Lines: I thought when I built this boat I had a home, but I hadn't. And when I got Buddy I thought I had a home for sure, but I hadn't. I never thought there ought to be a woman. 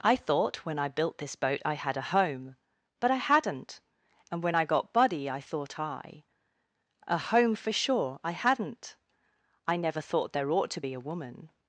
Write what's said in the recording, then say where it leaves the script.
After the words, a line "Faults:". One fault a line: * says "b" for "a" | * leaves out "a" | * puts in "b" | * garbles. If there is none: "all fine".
I thought when I built this boat I had a home, but I hadn't. And when I got Buddy I thought I a home for sure, I hadn't. I never thought there ought to be a woman.
Faults:
* leaves out "had"
* leaves out "but"